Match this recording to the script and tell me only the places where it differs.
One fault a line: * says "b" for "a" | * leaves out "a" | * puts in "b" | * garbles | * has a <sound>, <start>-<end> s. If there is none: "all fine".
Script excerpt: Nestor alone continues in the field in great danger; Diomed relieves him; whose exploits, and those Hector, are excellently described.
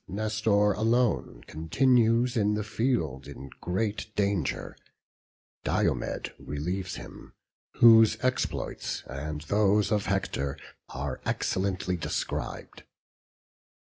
* puts in "of"